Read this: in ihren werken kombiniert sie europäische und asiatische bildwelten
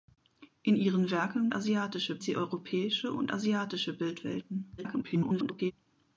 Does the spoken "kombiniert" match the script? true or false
false